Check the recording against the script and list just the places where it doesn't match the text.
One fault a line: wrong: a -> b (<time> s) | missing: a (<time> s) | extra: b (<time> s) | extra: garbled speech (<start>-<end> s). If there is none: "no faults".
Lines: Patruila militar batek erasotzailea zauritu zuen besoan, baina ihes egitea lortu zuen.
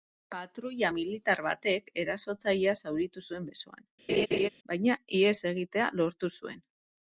no faults